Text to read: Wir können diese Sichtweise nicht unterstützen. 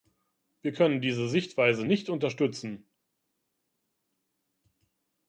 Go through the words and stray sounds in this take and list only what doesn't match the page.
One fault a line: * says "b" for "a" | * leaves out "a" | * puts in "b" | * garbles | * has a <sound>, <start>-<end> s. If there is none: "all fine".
all fine